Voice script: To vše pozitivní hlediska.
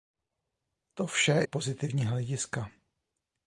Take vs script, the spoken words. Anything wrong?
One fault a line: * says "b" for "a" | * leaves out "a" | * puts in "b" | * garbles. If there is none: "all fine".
all fine